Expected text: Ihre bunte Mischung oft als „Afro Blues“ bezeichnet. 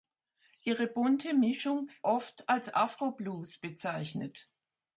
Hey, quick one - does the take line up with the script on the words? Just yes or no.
yes